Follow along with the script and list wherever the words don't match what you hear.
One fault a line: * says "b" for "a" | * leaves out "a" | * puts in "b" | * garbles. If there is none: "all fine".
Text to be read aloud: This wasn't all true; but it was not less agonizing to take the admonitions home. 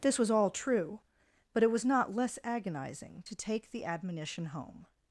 * says "was" for "wasn't"
* says "admonition" for "admonitions"